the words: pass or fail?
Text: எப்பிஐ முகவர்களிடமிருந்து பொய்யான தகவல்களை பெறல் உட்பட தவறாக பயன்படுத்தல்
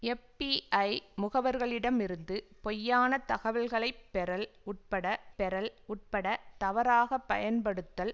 fail